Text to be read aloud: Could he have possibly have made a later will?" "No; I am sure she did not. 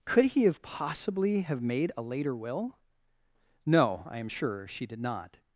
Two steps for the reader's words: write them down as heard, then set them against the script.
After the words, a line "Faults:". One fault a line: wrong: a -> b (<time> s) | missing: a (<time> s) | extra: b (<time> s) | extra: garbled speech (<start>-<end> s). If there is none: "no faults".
Could he have possibly have made a later will?" "No; I am sure she did not.
Faults:
no faults